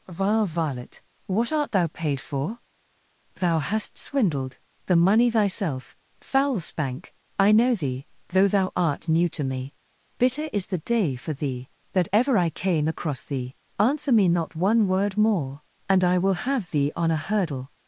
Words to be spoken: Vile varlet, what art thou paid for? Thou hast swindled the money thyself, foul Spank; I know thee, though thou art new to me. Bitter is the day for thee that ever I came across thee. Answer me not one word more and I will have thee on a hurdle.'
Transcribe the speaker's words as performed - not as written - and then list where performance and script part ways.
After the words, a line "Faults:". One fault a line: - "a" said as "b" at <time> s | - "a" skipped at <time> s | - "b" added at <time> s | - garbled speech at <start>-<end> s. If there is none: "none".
Vile varlet, what art thou paid for? Thou hast swindled the money thyself, foul Spank; I know thee, though thou art new to me. Bitter is the day for thee that ever I came across thee. Answer me not one word more and I will have thee on a hurdle.'
Faults:
none